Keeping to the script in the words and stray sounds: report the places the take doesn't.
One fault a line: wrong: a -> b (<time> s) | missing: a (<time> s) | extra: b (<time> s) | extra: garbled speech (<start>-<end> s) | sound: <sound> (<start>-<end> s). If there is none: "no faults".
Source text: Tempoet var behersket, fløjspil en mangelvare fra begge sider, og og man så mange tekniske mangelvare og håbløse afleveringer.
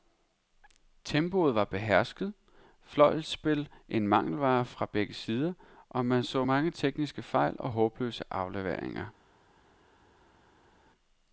missing: og (6.1 s)
wrong: mangelvare -> fejl (7.2 s)